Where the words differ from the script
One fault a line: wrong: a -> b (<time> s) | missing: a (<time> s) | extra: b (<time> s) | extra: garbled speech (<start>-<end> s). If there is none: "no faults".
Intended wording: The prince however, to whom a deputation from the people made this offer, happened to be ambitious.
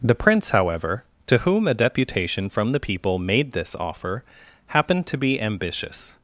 no faults